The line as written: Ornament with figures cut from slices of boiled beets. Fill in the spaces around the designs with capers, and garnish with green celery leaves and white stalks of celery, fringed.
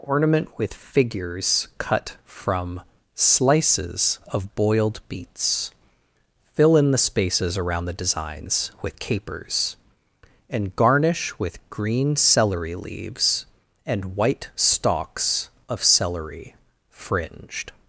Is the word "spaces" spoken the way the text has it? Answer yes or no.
yes